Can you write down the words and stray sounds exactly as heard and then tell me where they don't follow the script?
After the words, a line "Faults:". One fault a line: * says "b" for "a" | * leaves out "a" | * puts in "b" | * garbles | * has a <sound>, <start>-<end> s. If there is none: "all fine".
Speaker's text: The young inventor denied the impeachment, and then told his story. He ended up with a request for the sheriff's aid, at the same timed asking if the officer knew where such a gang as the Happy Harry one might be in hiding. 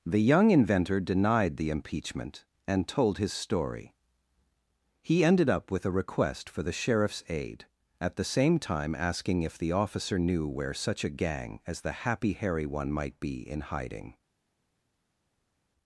The young inventor denied the impeachment, and told his story. He ended up with a request for the sheriff's aid, at the same time asking if the officer knew where such a gang as the Happy Harry one might be in hiding.
Faults:
* leaves out "then"
* says "time" for "timed"